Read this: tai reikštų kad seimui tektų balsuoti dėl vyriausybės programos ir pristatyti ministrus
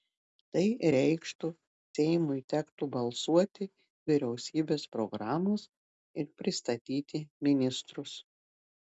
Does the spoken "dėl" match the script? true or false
false